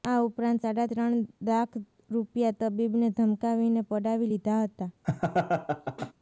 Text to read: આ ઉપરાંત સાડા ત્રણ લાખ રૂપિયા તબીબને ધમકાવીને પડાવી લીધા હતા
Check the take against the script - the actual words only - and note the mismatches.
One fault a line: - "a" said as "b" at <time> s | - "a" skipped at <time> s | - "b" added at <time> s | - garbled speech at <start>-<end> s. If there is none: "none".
none